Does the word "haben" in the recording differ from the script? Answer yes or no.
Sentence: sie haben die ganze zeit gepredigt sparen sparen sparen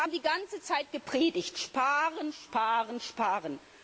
no